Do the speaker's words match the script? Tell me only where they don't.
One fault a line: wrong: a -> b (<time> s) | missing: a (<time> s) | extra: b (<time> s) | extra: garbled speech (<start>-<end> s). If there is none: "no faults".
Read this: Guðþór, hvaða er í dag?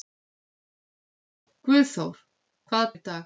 no faults